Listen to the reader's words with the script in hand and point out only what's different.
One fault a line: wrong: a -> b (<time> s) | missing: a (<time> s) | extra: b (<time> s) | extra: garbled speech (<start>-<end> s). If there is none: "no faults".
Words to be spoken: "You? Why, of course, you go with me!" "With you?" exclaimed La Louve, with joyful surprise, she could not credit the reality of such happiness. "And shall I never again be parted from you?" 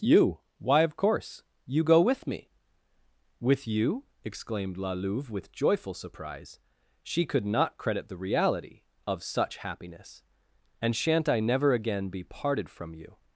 wrong: shall -> shan't (10.9 s)